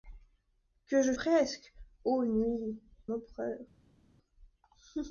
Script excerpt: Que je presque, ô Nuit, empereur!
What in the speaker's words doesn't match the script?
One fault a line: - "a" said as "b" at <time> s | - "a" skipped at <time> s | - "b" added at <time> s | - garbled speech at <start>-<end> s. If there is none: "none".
none